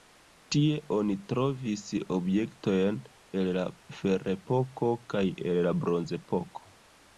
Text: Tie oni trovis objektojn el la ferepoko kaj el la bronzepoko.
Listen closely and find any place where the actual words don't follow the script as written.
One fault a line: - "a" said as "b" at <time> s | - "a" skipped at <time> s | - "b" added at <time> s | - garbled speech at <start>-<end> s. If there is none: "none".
none